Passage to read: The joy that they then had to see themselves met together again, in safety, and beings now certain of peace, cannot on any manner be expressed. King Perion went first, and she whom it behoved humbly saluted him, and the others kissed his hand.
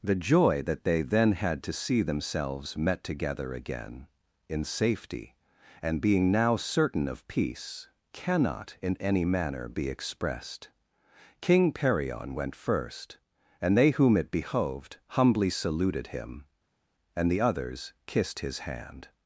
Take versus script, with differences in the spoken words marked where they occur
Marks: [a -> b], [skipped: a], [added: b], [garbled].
The joy that they then had to see themselves met together again, in safety, and [beings -> being] now certain of peace, cannot [on -> in] any manner be expressed. King Perion went first, and [she -> they] whom it behoved humbly saluted him, and the others kissed his hand.